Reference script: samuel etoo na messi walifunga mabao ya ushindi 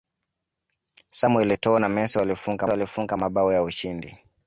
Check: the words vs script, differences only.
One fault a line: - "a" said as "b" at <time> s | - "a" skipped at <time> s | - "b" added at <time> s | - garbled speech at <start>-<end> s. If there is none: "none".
- "walifunga" added at 2.7 s